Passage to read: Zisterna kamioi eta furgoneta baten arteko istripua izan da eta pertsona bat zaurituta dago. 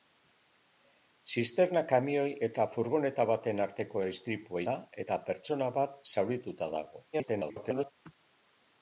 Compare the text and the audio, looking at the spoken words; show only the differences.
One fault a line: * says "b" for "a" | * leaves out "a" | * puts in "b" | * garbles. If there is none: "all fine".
* leaves out "izan"
* garbles